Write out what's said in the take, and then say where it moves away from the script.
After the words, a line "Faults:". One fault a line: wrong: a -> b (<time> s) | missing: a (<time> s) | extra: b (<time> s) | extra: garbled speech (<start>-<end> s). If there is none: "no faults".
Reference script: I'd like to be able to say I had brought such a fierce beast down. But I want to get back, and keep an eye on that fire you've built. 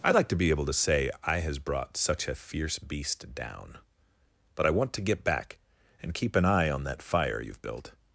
I'd like to be able to say I has brought such a fierce beast down. But I want to get back, and keep an eye on that fire you've built.
Faults:
wrong: had -> has (1.4 s)